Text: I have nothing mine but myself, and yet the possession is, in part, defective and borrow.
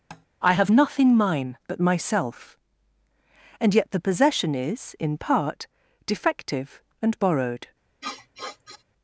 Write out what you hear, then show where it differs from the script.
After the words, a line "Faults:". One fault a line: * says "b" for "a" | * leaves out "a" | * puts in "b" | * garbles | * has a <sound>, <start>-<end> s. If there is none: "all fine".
I have nothing mine but myself, and yet the possession is, in part, defective and borrowed.
Faults:
* has a tap, 0.1-0.3 s
* says "borrowed" for "borrow"
* has a sniff, 8.0-8.8 s